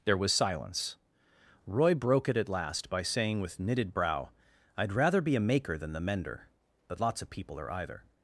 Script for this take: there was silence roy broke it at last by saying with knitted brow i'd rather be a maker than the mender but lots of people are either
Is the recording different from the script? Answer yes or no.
no